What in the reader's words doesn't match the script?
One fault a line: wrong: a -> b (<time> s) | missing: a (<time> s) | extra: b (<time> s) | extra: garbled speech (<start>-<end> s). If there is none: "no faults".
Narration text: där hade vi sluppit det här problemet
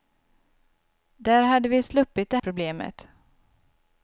missing: här (2.4 s)